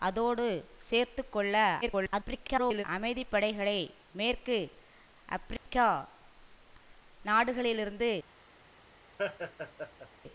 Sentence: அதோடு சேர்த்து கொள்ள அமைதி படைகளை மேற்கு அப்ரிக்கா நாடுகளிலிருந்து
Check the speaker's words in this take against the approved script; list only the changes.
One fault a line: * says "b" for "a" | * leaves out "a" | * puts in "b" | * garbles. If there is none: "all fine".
* garbles